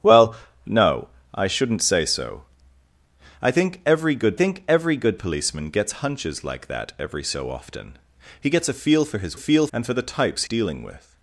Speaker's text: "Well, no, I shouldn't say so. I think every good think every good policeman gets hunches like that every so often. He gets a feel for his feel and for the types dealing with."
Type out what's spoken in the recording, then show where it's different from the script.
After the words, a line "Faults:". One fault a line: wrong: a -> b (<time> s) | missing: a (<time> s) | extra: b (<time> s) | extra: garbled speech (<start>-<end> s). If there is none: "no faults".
"Well, no, I shouldn't say so. I think every good think every good policeman gets hunches like that every so often. He gets a feel for his feel and for the types dealing with."
Faults:
no faults